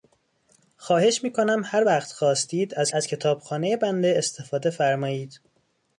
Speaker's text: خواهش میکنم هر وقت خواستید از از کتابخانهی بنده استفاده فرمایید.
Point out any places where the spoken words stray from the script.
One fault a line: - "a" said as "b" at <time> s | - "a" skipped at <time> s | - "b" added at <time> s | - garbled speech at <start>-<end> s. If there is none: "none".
none